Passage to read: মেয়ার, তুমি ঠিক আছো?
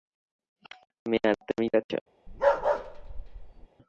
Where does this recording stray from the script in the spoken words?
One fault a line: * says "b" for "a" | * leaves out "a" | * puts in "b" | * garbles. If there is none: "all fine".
* leaves out "ঠিক"